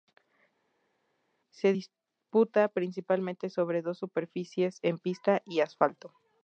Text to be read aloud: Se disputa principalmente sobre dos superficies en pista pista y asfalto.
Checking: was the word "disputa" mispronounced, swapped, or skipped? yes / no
no